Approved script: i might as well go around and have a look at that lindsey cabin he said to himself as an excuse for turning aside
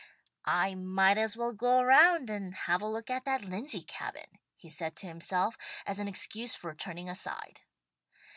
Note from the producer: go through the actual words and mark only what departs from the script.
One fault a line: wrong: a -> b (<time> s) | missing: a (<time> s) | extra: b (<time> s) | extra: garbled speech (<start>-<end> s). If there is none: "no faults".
no faults